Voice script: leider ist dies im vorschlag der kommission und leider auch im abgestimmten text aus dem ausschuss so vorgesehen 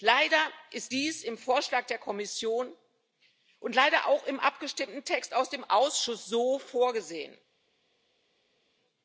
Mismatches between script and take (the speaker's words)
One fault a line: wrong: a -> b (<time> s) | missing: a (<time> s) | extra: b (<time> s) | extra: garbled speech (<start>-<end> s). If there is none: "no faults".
no faults